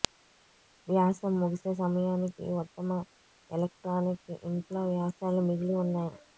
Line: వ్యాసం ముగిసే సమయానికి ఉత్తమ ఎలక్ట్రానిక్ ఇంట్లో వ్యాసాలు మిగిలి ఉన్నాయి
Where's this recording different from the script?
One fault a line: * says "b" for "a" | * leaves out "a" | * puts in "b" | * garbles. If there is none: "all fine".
all fine